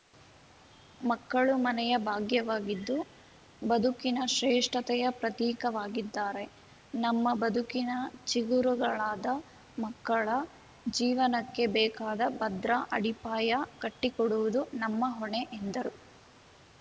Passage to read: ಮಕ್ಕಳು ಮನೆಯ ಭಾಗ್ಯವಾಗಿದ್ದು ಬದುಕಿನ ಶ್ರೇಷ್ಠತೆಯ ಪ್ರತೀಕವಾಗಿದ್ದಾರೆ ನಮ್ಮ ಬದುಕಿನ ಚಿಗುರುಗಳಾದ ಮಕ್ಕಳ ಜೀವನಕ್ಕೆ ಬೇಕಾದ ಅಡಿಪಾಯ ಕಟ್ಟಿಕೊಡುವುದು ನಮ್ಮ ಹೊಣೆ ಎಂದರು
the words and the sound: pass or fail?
fail